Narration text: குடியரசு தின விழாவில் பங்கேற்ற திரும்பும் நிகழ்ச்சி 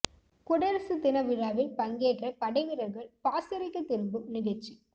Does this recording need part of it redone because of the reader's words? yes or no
yes